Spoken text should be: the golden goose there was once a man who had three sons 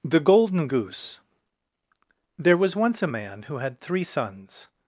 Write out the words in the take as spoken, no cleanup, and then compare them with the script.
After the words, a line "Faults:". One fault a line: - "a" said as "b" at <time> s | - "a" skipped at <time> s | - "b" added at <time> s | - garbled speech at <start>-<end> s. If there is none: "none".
the golden goose there was once a man who had three sons
Faults:
none